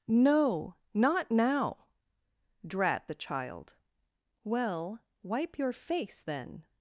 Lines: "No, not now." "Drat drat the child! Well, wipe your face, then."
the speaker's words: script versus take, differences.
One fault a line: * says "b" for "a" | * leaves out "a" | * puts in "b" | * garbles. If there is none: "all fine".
* leaves out "drat"